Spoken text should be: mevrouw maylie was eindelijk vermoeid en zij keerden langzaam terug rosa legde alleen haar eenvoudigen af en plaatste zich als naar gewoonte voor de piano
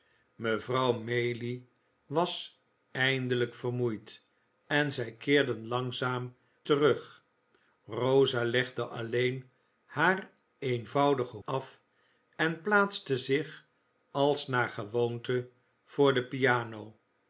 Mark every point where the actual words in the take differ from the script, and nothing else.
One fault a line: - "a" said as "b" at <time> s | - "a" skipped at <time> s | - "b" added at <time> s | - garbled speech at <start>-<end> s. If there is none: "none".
none